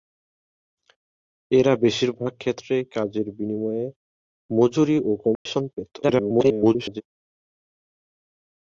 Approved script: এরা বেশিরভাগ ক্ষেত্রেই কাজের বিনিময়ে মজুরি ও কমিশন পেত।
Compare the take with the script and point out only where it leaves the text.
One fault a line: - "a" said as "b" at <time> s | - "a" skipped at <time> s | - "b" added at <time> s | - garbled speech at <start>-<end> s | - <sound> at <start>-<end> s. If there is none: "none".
- dropout at 5.3-5.5 s
- garbled speech at 6.0-7.0 s